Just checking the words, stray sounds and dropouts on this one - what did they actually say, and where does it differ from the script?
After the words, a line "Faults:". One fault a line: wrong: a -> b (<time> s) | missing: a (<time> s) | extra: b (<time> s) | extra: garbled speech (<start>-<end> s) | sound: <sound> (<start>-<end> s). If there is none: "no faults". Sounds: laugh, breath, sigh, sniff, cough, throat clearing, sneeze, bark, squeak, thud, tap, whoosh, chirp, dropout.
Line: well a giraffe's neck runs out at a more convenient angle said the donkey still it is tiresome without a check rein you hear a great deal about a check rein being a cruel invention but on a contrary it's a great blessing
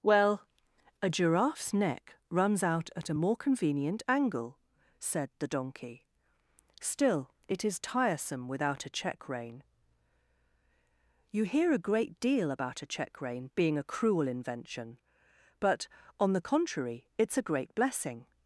well a giraffe's neck runs out at a more convenient angle said the donkey still it is tiresome without a check rein you hear a great deal about a check rein being a cruel invention but on the contrary it's a great blessing
Faults:
wrong: a -> the (16.3 s)